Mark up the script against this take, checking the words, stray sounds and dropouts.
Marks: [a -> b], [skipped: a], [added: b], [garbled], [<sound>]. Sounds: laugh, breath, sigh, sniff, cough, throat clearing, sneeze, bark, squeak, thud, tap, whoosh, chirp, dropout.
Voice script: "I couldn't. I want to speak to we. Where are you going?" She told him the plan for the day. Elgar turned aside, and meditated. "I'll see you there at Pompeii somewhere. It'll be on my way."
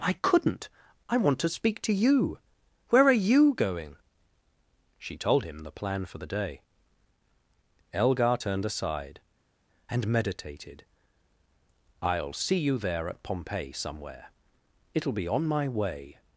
"I couldn't. I want to speak to [we. -> you] Where are you going?" She told him the plan for the day. Elgar turned aside, and meditated. "I'll see you there at Pompeii somewhere. It'll be on my way."